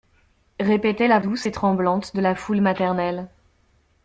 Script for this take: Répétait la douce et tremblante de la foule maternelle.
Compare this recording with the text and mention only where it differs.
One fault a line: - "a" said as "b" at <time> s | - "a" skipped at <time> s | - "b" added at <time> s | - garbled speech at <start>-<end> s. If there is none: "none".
none